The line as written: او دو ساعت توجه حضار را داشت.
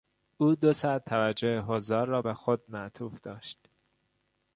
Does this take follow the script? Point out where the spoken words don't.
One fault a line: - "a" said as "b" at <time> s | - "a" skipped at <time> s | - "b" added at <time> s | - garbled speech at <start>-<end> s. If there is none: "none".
- "به خود معطوف" added at 2.2 s